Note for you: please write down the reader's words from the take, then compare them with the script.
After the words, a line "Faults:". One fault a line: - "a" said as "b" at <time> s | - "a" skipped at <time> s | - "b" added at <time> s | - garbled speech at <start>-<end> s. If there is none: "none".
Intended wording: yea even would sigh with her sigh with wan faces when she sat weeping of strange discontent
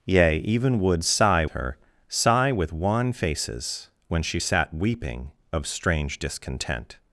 yea even would sigh her sigh with wan faces when she sat weeping of strange discontent
Faults:
- "with" skipped at 1.4 s